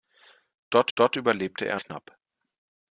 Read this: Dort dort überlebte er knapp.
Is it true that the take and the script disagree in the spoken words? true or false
false